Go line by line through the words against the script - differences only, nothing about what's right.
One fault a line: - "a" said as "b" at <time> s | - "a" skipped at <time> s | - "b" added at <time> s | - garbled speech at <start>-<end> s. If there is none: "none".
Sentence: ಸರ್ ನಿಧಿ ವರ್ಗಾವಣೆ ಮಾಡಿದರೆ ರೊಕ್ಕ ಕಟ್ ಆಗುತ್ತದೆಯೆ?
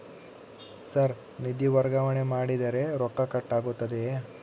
none